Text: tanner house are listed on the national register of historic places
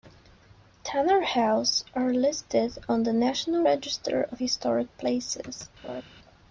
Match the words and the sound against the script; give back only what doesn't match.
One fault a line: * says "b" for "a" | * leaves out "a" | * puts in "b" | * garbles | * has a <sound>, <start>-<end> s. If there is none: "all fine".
* has a laugh, 5.8-6.0 s